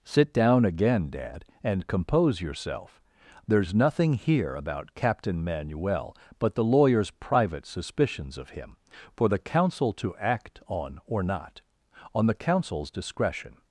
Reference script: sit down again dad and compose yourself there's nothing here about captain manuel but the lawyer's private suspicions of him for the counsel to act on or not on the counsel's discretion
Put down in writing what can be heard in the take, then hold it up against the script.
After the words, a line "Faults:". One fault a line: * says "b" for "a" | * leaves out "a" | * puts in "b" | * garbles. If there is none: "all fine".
sit down again dad and compose yourself there's nothing here about captain manuel but the lawyer's private suspicions of him for the counsel to act on or not on the counsel's discretion
Faults:
all fine